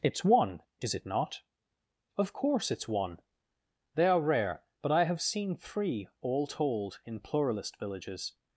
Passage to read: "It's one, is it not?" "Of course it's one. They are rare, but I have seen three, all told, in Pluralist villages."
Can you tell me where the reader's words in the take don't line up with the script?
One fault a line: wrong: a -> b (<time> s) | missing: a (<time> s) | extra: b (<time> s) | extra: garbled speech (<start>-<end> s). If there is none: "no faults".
no faults